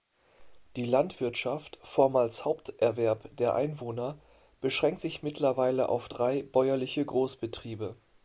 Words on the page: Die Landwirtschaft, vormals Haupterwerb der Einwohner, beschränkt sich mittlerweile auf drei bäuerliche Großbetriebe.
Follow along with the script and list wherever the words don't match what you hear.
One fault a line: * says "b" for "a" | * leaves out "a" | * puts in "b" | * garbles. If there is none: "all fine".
all fine